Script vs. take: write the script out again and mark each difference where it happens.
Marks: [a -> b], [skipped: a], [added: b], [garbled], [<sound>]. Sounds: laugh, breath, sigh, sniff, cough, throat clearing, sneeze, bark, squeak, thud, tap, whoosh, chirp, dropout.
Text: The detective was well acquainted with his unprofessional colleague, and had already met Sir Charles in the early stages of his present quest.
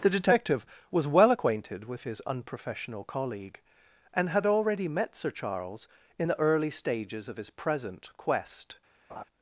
The detective was well acquainted with his unprofessional colleague, and had already met Sir Charles in the early stages of his present quest. [laugh]